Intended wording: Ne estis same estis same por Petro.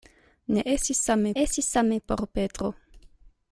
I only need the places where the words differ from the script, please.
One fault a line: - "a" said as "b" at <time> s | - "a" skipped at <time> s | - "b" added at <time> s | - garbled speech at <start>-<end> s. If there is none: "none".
none